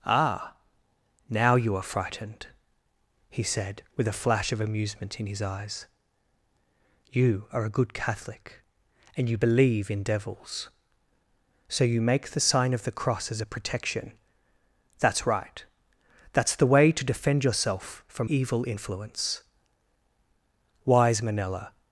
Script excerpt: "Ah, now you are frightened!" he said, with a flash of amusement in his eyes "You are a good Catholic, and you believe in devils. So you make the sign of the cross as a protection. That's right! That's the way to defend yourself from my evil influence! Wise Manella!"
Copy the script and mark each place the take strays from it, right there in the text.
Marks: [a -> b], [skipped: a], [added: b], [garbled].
"Ah, now you are frightened!" he said, with a flash of amusement in his eyes "You are a good Catholic, and you believe in devils. So you make the sign of the cross as a protection. That's right! That's the way to defend yourself from [skipped: my] evil influence! Wise Manella!"